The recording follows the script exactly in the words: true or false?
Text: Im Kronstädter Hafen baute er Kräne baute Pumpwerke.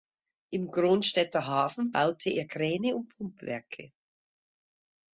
false